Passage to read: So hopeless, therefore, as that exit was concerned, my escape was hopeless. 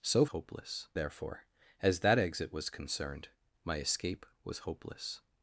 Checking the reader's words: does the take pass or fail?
pass